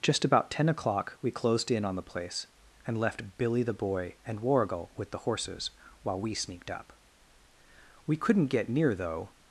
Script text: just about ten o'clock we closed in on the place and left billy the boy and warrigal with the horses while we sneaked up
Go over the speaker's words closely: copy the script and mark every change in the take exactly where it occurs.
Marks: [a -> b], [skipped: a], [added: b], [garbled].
just about ten o'clock we closed in on the place and left billy the boy and warrigal with the horses while we sneaked up [added: we couldn't get near though]